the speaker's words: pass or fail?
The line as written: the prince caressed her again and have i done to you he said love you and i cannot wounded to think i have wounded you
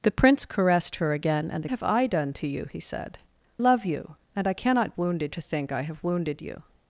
pass